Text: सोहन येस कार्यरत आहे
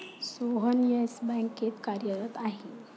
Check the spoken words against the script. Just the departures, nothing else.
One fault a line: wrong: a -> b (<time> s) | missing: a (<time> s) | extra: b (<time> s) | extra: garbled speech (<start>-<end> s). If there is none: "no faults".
extra: बँकेत (1.2 s)